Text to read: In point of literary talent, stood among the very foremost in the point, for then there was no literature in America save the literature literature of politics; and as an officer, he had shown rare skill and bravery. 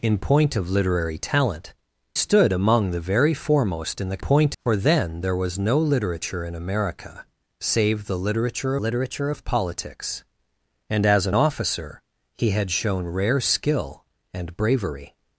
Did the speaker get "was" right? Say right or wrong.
right